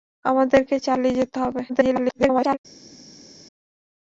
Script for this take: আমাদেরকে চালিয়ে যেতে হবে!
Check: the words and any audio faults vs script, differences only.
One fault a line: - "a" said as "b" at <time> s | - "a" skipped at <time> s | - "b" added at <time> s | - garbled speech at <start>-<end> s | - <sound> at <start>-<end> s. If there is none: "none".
- garbled speech at 1.7-2.6 s